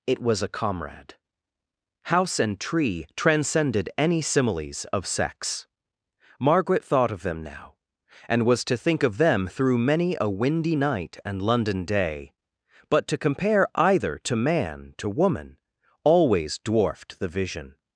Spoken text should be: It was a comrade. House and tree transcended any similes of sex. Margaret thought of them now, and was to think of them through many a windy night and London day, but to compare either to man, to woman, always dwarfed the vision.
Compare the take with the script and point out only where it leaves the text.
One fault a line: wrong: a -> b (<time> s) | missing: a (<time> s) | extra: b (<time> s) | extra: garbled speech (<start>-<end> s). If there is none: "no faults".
no faults